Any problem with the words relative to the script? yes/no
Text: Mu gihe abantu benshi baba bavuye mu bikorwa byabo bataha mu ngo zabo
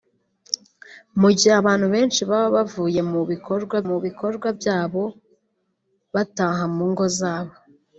yes